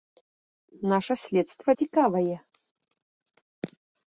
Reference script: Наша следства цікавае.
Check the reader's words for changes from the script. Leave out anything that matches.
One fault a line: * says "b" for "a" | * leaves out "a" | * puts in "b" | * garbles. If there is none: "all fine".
all fine